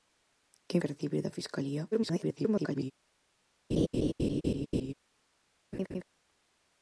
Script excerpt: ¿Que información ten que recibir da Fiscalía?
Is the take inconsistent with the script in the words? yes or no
yes